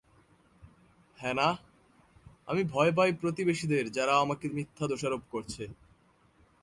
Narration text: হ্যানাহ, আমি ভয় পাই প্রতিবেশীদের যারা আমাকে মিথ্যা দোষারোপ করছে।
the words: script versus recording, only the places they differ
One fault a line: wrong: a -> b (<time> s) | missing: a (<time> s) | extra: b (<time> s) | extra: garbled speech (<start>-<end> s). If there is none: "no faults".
no faults